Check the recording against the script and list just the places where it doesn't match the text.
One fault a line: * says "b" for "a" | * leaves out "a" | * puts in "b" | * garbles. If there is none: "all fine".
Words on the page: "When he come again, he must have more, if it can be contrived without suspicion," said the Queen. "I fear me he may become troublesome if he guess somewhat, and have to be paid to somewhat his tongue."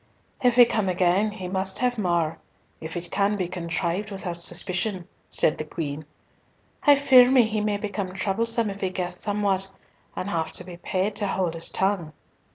* says "If" for "When"
* says "hold" for "somewhat"